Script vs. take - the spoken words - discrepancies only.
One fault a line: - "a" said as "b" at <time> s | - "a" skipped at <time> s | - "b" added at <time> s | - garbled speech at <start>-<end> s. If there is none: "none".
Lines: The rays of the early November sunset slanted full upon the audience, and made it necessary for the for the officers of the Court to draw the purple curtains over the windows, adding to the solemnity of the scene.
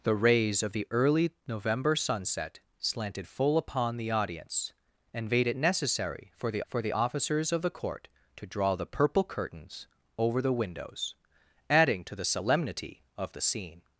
none